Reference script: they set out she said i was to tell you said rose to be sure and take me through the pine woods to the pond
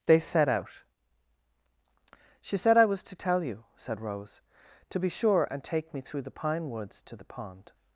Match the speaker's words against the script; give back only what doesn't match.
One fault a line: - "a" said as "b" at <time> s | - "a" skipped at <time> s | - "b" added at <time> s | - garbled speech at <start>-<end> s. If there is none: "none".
none